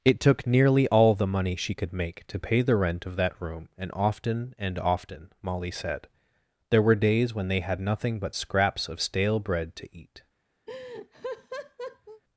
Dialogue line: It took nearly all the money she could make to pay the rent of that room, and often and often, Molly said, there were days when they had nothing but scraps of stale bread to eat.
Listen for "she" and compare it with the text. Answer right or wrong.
right